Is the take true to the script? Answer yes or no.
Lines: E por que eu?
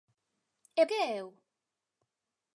no